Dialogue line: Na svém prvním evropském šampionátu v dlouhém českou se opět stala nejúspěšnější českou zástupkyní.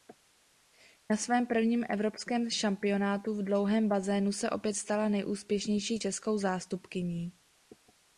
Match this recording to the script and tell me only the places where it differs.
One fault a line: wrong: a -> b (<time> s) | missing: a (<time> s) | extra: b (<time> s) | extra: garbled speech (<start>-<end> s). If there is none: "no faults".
wrong: českou -> bazénu (3.9 s)